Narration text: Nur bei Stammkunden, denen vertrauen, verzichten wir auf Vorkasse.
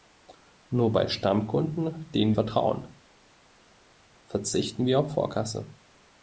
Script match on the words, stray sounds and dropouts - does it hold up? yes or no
yes